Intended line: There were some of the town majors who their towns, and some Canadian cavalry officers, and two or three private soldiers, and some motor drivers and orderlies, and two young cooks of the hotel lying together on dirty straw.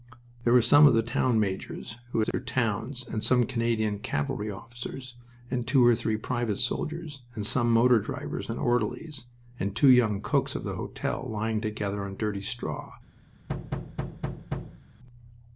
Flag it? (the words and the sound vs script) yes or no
yes